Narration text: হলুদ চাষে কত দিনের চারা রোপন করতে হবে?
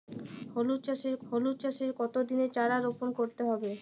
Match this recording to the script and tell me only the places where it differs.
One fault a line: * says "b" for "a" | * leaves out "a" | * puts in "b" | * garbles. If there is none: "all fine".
* puts in "হলুদ চাষে"